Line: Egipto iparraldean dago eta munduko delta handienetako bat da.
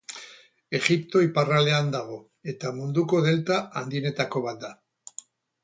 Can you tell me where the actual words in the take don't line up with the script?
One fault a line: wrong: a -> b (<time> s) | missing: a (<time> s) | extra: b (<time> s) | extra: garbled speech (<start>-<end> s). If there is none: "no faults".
no faults